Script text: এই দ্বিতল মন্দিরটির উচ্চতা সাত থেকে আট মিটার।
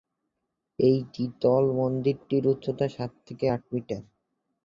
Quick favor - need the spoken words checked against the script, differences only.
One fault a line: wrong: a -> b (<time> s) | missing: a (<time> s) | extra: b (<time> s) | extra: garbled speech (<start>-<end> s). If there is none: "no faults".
no faults